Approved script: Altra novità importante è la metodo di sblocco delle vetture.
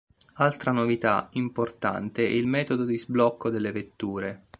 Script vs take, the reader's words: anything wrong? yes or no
yes